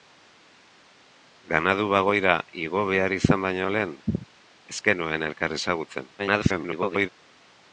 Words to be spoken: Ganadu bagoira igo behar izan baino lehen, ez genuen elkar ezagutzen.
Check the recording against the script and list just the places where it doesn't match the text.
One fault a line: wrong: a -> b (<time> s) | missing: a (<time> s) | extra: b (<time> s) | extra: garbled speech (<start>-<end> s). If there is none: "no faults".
extra: garbled speech (6.2-7.1 s)